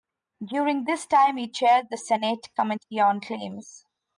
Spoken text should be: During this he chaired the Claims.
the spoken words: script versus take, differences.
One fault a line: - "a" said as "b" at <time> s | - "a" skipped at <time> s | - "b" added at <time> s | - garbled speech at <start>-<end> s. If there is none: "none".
- "time" added at 1.1 s
- "Senate Committee on" added at 2.0 s